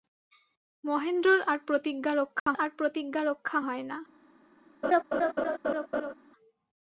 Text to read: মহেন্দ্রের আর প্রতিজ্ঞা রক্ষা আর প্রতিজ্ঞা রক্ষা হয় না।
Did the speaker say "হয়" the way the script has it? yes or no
yes